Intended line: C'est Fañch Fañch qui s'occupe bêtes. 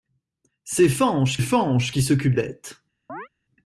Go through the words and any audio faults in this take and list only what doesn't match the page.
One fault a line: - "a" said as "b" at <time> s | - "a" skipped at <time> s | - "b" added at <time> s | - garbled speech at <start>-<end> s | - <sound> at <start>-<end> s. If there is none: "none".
- chirp at 3.1-3.3 s